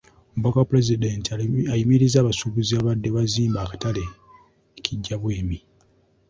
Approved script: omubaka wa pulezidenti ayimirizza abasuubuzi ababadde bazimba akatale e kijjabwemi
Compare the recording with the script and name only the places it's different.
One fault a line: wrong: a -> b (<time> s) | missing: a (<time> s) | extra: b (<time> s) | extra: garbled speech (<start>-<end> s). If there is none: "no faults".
no faults